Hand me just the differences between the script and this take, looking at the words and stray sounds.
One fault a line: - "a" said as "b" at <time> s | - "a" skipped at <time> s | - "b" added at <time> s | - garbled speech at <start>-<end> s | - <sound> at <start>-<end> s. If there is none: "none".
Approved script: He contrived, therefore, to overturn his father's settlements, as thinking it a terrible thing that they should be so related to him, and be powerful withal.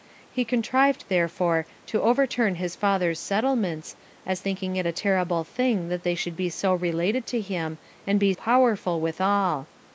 none